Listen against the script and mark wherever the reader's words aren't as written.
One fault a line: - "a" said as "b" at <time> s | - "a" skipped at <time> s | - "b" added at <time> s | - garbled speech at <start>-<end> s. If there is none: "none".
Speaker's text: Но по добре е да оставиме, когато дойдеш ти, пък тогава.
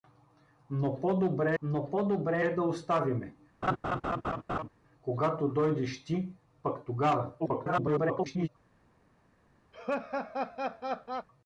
- "но по добре" added at 1.6 s
- garbled speech at 7.4-8.5 s